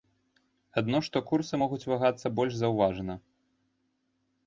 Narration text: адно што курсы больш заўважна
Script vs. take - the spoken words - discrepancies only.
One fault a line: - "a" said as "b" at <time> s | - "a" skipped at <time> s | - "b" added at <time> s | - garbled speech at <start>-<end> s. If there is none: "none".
- "могуць вагацца" added at 1.6 s